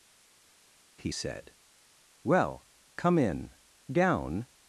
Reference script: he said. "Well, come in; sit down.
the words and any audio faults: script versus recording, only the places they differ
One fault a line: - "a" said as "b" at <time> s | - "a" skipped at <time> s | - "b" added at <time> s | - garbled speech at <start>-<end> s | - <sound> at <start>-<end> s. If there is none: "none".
- "sit" skipped at 3.5 s